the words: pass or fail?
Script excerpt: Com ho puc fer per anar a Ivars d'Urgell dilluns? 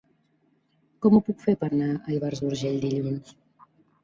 pass